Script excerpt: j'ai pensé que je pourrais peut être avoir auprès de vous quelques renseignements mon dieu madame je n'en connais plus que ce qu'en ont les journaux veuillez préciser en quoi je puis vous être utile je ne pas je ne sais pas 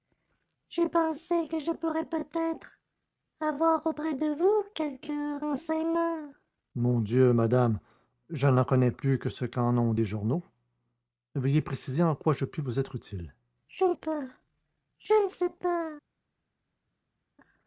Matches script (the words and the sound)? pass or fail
pass